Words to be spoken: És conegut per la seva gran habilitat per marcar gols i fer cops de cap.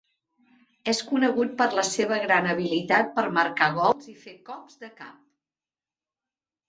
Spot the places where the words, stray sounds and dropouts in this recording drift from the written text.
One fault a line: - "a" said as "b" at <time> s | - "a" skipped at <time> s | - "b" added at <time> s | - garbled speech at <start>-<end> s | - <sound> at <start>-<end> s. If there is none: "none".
none